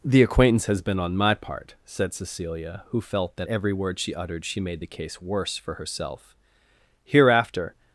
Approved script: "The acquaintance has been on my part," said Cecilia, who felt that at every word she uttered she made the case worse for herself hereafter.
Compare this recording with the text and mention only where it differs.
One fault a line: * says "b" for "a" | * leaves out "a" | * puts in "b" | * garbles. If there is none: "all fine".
* leaves out "at"